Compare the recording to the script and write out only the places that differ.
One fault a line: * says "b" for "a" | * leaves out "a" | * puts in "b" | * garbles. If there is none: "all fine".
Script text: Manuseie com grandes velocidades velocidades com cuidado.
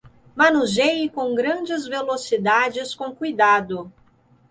* leaves out "velocidades"